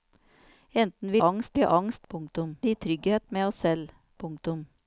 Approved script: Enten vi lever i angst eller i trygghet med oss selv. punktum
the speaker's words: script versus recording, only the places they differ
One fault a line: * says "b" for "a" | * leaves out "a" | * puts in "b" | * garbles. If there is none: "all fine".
* says "angst" for "lever"
* says "punktum" for "eller"